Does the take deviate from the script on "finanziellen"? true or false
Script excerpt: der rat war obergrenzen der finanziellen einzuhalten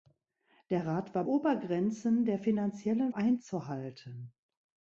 false